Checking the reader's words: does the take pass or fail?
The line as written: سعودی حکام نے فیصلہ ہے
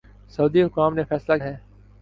pass